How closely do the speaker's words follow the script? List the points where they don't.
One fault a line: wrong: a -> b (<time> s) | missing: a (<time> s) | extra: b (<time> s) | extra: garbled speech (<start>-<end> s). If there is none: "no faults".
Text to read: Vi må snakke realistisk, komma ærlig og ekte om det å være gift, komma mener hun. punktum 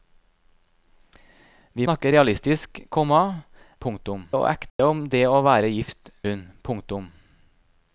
missing: må (1.9 s)
wrong: ærlig -> punktum (3.8 s)
missing: komma mener (6.1 s)